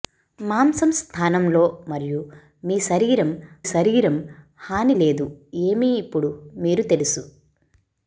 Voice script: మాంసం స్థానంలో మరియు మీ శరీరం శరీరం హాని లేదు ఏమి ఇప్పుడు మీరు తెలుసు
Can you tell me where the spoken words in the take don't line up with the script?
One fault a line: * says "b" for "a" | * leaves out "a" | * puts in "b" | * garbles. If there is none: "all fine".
all fine